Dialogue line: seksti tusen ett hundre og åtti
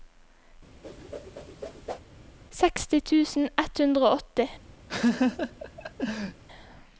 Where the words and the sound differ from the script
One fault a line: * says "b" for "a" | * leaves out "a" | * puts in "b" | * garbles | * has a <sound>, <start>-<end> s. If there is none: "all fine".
* has a whoosh, 0.8-2.0 s
* has a laugh, 4.9-6.4 s